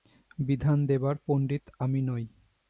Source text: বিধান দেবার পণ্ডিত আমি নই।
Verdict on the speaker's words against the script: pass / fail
pass